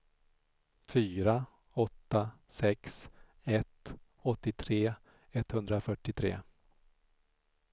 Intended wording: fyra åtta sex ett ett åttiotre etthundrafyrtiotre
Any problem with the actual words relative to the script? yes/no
yes